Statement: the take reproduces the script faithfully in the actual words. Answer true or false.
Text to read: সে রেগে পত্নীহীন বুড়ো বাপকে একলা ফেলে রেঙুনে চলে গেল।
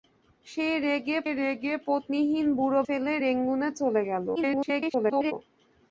false